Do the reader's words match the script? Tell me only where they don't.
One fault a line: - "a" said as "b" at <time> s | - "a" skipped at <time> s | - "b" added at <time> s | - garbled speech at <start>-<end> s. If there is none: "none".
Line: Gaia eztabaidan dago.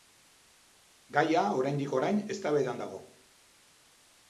- "oraindik orain" added at 1.6 s